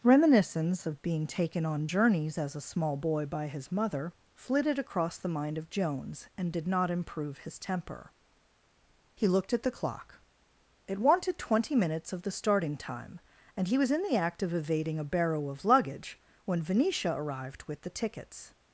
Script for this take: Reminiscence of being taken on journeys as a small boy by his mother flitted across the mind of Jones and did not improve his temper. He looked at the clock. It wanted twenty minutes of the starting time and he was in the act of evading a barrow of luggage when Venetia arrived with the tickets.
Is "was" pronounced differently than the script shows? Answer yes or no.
no